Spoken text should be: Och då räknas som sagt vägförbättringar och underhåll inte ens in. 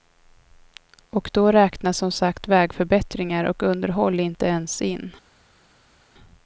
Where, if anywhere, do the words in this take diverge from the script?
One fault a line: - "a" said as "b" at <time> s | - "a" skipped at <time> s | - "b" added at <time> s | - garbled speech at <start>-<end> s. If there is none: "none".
none